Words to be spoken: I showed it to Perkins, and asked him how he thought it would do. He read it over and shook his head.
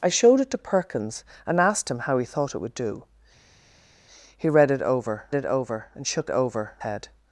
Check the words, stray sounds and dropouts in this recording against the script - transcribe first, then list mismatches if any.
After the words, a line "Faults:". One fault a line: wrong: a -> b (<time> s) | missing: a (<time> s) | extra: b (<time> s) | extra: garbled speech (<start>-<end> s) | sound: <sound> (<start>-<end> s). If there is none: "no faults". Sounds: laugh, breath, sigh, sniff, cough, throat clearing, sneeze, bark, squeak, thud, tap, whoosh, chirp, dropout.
I showed it to Perkins, and asked him how he thought it would do. He read it over it over and shook over head.
Faults:
extra: it over (5.3 s)
wrong: his -> over (6.3 s)